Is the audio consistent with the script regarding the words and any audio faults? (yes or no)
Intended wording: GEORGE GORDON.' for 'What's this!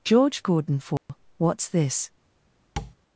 no